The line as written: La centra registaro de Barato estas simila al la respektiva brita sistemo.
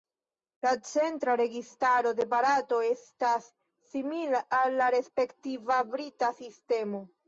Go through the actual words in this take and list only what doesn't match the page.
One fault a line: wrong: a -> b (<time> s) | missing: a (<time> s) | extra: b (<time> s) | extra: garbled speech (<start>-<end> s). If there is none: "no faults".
no faults